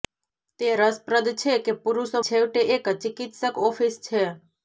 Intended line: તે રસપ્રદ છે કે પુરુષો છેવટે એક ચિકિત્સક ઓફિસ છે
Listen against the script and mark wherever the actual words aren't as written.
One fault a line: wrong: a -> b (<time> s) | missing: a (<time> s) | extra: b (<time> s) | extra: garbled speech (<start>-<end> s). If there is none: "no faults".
no faults